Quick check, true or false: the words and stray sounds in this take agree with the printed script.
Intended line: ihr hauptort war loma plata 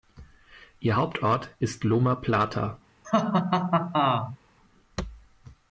false